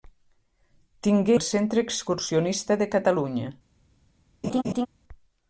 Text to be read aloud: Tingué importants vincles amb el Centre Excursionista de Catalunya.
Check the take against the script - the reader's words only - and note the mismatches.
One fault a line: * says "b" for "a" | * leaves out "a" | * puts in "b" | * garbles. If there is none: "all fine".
* leaves out "importants vincles amb"